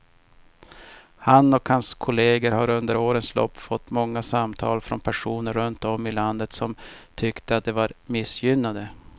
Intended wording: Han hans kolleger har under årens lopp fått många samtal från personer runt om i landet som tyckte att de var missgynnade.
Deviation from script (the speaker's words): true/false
true